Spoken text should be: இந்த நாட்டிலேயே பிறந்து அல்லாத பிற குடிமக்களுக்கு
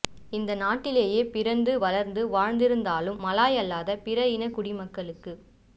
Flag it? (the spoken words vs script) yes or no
yes